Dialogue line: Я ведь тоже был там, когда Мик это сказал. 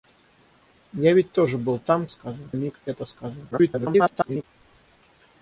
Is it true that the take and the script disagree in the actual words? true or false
true